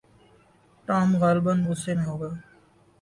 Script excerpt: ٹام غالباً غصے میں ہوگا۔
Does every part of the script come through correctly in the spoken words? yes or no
yes